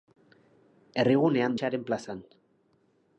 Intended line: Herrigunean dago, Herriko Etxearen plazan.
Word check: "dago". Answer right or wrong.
wrong